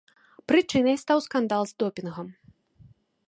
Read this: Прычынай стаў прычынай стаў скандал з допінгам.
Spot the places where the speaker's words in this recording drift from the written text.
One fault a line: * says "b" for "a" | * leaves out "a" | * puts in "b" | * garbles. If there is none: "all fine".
* leaves out "прычынай стаў"